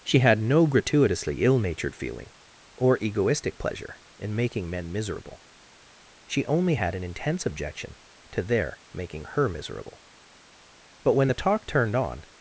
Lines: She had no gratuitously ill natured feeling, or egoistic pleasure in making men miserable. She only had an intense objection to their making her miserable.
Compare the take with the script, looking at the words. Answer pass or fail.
fail